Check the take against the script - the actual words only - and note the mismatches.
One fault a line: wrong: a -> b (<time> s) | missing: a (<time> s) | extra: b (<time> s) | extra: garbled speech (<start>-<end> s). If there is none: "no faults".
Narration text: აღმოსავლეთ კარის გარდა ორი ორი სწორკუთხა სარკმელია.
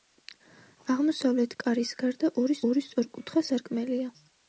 no faults